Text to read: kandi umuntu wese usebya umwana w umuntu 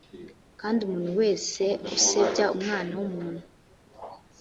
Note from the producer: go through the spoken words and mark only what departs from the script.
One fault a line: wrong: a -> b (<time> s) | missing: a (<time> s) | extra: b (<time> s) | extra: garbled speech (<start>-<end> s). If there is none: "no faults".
no faults